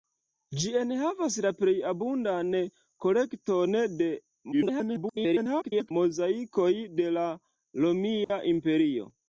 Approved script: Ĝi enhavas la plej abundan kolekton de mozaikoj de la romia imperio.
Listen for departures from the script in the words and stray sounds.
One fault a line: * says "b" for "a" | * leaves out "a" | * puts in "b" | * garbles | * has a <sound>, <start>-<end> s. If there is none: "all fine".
* garbles
* has a dropout, 8.2-8.3 s